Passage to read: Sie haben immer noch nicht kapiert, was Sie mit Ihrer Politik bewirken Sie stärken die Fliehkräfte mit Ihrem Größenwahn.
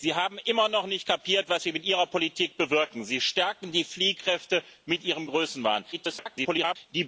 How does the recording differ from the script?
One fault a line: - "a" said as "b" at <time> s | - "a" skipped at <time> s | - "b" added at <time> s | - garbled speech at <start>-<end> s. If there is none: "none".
- garbled speech at 5.9-6.8 s